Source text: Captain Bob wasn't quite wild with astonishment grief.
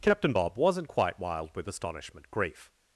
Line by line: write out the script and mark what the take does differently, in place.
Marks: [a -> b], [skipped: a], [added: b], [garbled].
Captain Bob wasn't quite wild with astonishment grief.